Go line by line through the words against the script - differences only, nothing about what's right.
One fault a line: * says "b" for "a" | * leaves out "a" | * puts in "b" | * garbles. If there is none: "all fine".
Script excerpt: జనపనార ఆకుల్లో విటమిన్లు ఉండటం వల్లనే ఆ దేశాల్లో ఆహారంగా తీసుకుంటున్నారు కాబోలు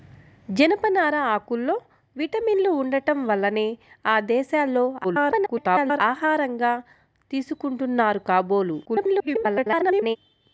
* garbles
* garbles